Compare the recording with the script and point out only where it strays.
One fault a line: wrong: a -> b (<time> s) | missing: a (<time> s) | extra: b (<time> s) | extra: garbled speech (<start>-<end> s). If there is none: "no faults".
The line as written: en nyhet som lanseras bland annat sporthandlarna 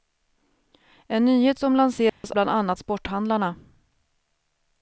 no faults